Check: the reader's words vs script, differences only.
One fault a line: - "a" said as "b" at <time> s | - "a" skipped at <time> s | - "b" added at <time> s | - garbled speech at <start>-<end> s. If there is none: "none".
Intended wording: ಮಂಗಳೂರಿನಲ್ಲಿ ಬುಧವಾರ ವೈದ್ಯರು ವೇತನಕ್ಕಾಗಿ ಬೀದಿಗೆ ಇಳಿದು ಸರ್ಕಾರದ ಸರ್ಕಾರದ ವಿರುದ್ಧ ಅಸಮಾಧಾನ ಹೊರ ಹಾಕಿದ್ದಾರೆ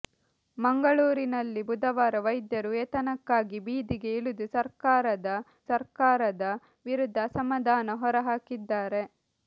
none